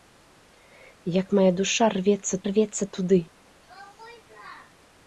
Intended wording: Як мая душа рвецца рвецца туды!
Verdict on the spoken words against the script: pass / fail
pass